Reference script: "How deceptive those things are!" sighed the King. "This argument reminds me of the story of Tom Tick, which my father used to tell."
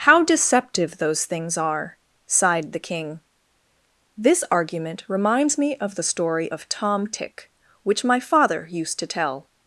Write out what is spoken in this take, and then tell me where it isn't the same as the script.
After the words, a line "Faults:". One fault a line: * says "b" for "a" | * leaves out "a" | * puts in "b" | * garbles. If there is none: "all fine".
"How deceptive those things are!" sighed the King. "This argument reminds me of the story of Tom Tick, which my father used to tell."
Faults:
all fine